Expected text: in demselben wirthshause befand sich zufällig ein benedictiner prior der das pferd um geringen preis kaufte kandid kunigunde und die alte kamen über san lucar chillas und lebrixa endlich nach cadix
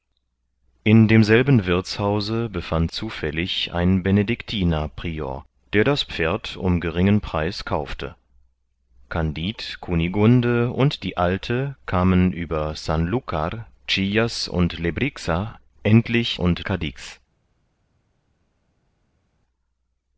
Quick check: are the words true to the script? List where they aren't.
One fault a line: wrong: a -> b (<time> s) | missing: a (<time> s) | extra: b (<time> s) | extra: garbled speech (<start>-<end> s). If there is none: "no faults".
missing: sich (2.9 s)
wrong: nach -> und (16.4 s)